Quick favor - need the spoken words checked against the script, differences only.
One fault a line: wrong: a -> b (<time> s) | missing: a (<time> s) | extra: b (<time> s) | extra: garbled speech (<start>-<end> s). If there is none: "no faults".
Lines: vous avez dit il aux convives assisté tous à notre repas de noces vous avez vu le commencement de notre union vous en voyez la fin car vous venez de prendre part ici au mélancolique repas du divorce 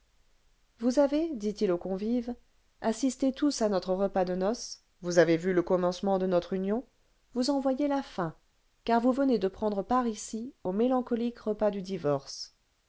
no faults